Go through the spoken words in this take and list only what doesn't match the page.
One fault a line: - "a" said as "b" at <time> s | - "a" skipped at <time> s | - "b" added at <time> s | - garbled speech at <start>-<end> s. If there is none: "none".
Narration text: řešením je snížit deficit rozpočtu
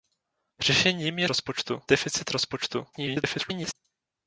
- "snížit" said as "rozpočtu" at 1.3 s
- garbled speech at 2.9-3.7 s